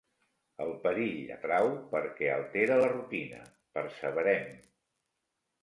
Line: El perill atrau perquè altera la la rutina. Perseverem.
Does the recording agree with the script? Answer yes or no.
no